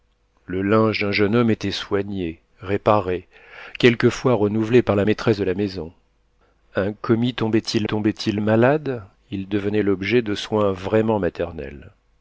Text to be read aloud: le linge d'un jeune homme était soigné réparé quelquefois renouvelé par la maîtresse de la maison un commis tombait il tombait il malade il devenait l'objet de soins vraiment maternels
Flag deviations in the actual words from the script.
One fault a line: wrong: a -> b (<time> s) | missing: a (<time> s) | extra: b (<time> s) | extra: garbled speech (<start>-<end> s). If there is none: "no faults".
no faults